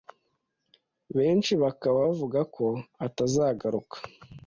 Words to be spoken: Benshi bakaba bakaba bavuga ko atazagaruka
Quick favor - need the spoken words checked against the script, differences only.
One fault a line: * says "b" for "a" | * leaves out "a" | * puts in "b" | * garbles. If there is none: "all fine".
* leaves out "bakaba"